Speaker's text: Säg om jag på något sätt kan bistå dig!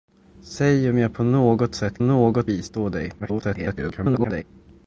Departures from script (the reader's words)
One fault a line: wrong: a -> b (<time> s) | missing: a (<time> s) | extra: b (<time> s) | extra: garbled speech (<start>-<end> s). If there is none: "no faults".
wrong: kan -> något (2.0 s)
extra: garbled speech (3.2-4.4 s)